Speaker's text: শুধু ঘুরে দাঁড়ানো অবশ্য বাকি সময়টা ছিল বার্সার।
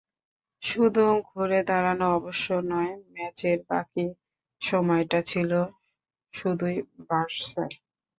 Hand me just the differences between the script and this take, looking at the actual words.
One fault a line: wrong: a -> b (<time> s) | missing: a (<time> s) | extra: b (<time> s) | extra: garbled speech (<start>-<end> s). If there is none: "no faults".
extra: নয় ম্যাচের (2.7 s)
extra: শুধুই (6.3 s)